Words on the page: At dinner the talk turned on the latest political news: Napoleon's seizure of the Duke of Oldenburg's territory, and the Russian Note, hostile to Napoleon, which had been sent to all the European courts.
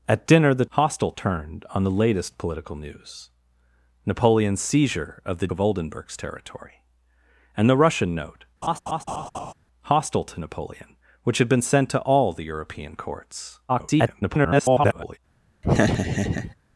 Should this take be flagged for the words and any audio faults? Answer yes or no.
yes